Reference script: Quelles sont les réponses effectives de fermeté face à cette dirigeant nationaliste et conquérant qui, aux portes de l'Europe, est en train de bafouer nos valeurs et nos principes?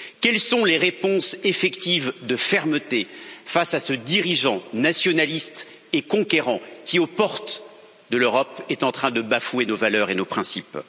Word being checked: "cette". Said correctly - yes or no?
no